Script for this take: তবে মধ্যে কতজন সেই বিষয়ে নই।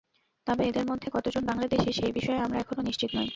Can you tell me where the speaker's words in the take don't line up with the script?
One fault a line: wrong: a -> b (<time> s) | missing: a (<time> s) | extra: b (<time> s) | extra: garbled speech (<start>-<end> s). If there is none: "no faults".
extra: এদের (0.7 s)
extra: বাংলাদেশি (1.4 s)
extra: আমরা এখনো নিশ্চিত (2.4 s)